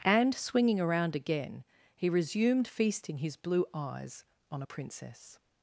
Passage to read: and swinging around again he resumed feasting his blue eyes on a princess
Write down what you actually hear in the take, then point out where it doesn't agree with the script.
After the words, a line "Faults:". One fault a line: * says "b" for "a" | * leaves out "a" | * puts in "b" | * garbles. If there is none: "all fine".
and swinging around again he resumed feasting his blue eyes on a princess
Faults:
all fine